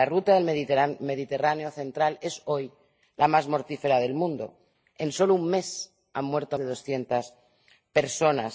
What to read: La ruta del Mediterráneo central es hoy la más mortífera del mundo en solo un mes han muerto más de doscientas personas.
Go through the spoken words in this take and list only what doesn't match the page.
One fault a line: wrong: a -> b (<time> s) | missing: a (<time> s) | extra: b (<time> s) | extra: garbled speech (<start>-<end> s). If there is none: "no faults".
missing: más (6.6 s)